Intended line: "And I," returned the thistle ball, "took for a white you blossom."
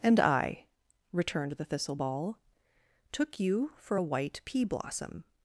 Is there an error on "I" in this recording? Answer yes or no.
no